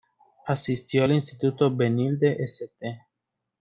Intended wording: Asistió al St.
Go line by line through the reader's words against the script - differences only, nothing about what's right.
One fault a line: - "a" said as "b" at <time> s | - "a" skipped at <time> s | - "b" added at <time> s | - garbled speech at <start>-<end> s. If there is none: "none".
- "instituto Benilde" added at 1.1 s